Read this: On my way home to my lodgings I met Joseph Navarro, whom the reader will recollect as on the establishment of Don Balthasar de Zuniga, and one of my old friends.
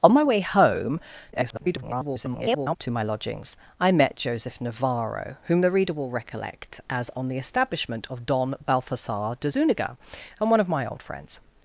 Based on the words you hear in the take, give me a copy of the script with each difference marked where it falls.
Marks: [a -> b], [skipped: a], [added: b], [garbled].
On my way home [garbled] to my lodgings I met Joseph Navarro, whom the reader will recollect as on the establishment of Don Balthasar de Zuniga, and one of my old friends.